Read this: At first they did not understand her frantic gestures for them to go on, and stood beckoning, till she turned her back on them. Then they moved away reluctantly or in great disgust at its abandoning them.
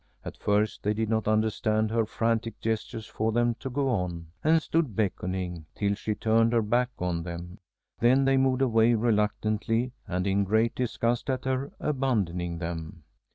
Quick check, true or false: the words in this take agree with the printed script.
false